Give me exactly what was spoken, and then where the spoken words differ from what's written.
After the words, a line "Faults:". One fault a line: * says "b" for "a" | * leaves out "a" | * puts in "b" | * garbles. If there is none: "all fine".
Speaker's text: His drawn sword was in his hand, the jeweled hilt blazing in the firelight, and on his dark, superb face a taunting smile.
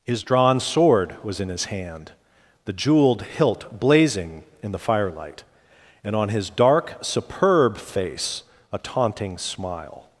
His drawn sword was in his hand, the jeweled hilt blazing in the firelight, and on his dark, superb face a taunting smile.
Faults:
all fine